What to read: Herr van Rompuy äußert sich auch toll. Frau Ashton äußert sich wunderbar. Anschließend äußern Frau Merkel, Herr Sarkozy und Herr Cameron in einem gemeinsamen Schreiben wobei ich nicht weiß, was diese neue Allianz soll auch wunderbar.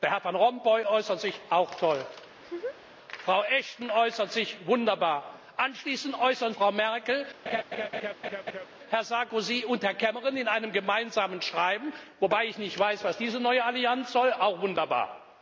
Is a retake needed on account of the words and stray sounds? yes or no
yes